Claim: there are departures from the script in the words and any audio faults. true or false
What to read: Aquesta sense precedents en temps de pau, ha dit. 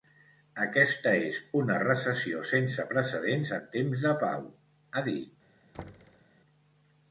true